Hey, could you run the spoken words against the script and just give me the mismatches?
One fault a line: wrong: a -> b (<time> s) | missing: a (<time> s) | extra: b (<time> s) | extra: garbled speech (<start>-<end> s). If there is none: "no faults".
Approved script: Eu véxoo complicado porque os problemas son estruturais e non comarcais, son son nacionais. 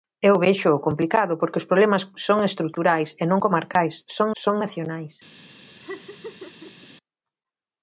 no faults